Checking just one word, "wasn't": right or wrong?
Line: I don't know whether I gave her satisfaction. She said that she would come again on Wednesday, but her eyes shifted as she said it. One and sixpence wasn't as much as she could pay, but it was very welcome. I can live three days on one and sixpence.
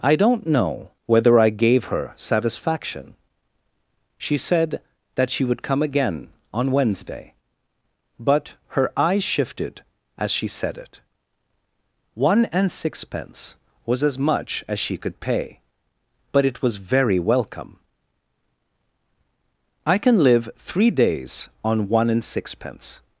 wrong